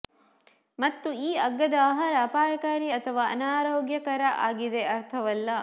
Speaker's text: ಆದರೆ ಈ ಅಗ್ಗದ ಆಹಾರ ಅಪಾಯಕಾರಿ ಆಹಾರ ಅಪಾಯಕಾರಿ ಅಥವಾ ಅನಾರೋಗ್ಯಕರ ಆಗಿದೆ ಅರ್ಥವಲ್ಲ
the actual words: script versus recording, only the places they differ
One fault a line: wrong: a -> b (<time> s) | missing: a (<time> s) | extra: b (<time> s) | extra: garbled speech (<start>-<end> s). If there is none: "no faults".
wrong: ಆದರೆ -> ಮತ್ತು (0.8 s)
missing: ಆಹಾರ ಅಪಾಯಕಾರಿ (2.9 s)